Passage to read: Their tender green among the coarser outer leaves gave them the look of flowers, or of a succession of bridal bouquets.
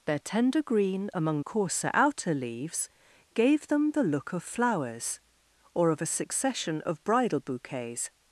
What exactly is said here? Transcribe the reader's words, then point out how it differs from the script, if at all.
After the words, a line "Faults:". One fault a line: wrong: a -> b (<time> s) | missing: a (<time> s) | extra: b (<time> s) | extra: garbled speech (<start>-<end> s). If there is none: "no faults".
Their tender green among coarser outer leaves gave them the look of flowers, or of a succession of bridal bouquets.
Faults:
missing: the (1.4 s)